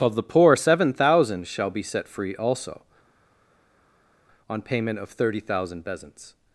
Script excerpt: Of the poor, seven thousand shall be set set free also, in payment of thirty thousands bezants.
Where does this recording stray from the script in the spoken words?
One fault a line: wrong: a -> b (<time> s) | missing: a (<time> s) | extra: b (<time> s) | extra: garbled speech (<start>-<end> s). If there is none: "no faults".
missing: set (2.1 s)
wrong: in -> on (4.5 s)
wrong: thousands -> thousand (5.4 s)